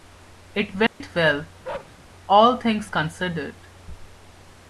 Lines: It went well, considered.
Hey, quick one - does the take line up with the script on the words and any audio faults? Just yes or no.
no